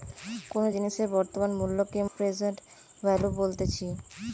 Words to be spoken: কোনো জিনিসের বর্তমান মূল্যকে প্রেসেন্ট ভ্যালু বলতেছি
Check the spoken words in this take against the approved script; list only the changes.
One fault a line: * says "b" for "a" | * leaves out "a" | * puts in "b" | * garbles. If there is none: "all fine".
all fine